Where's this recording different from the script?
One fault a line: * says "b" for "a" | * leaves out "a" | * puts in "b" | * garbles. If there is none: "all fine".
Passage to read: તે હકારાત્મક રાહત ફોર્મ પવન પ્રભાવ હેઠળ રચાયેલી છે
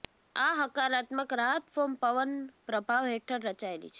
* says "આ" for "તે"